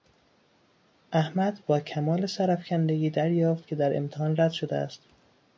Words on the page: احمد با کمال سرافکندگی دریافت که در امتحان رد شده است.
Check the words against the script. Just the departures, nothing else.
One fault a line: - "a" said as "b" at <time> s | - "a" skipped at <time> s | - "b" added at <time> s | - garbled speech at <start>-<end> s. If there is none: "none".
none